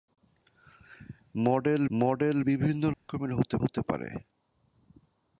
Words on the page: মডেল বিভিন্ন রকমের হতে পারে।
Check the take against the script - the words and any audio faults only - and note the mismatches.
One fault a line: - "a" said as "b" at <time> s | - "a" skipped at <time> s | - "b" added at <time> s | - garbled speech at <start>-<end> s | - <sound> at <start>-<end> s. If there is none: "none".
- "মডেল" added at 1.9 s
- dropout at 2.9-3.1 s
- "হতে" added at 3.6 s